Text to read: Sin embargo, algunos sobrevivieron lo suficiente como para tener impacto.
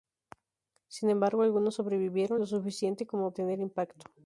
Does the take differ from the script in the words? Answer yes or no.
yes